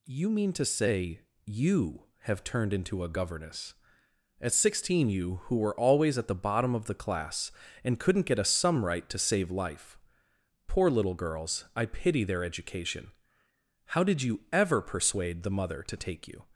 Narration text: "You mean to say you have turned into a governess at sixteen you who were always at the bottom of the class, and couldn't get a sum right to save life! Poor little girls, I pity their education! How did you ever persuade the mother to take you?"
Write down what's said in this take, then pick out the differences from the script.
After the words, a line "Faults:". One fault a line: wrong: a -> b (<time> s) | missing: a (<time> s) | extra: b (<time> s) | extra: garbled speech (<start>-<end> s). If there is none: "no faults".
"You mean to say you have turned into a governess at sixteen you who were always at the bottom of the class, and couldn't get a sum right to save life! Poor little girls, I pity their education! How did you ever persuade the mother to take you?"
Faults:
no faults